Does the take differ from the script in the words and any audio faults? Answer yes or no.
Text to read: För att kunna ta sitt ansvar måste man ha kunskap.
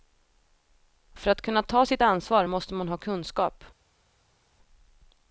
no